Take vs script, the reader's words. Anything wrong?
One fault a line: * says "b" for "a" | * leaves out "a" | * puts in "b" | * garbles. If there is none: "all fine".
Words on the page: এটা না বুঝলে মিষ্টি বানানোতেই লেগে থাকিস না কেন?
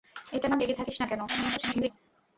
* leaves out "বুঝলে মিষ্টি বানানোতেই"
* garbles